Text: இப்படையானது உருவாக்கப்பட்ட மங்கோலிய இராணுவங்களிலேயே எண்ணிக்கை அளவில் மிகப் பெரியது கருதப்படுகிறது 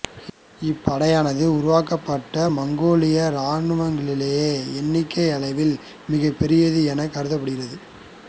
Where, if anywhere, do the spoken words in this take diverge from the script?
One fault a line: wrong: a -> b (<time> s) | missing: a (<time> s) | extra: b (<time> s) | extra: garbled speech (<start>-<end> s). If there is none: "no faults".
extra: எனக் (6.9 s)